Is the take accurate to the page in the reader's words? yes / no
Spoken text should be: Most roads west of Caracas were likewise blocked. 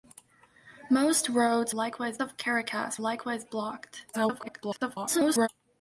no